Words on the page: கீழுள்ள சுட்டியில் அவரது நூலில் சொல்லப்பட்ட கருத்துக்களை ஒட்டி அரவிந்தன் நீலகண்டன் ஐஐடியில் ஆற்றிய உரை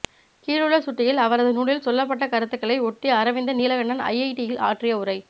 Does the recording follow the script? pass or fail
pass